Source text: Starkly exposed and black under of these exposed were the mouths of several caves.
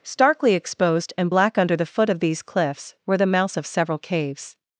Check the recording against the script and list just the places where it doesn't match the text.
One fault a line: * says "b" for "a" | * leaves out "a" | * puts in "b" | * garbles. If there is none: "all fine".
* puts in "the foot"
* says "cliffs" for "exposed"